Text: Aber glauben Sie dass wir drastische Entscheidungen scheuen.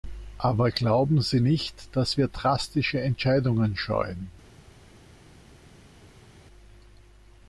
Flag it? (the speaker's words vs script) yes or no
yes